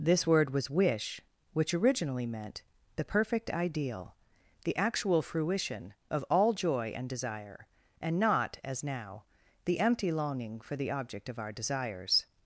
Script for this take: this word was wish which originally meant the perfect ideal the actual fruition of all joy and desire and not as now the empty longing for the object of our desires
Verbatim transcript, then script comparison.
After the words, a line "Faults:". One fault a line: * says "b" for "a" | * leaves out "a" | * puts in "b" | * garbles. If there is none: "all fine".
this word was wish which originally meant the perfect ideal the actual fruition of all joy and desire and not as now the empty longing for the object of our desires
Faults:
all fine